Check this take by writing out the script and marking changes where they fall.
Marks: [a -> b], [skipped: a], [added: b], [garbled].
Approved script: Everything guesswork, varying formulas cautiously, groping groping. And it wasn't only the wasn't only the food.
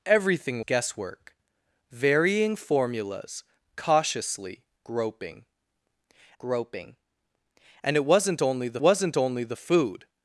Everything guesswork, varying formulas cautiously, groping groping. And it wasn't only the wasn't only the food.